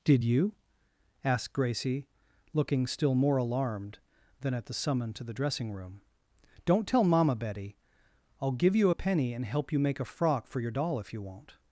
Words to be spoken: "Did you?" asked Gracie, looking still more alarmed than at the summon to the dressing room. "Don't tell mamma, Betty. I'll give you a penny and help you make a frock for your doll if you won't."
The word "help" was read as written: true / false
true